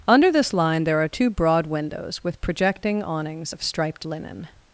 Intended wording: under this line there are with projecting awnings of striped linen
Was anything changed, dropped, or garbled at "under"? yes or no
no